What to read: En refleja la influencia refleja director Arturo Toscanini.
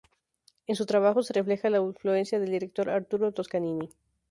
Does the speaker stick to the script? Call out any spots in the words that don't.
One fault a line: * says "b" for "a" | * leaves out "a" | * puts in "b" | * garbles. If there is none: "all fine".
* puts in "su trabajo se"
* says "del" for "refleja"